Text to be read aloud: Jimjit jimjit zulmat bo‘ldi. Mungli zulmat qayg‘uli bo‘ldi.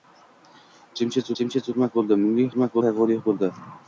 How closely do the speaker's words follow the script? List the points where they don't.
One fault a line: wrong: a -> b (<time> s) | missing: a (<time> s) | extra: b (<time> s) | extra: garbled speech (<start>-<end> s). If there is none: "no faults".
no faults